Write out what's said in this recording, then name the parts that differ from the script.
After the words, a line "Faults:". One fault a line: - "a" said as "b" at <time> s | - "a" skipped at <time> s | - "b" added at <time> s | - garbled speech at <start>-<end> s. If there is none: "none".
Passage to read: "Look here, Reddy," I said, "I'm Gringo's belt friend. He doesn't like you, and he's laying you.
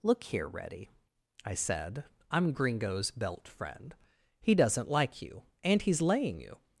"Look here, Reddy," I said, "I'm Gringo's belt friend. He doesn't like you, and he's laying you.
Faults:
none